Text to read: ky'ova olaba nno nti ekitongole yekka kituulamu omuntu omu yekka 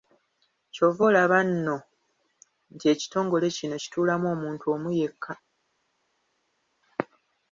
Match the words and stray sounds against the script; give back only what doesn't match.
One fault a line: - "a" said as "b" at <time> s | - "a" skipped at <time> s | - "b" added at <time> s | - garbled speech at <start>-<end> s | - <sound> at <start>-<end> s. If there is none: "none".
- "yekka" said as "kino" at 3.6 s